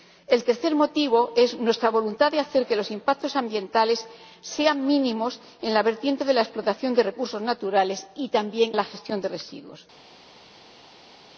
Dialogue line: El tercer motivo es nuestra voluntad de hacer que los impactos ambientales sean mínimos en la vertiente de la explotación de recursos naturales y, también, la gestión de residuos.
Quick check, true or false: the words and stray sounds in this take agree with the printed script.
true